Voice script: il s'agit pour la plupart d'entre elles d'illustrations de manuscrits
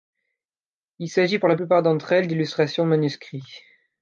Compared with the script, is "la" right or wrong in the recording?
right